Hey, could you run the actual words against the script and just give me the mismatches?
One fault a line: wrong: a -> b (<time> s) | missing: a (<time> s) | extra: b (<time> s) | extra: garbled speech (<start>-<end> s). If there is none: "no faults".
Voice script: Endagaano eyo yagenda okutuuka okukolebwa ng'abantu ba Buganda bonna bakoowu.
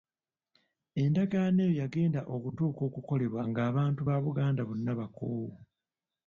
no faults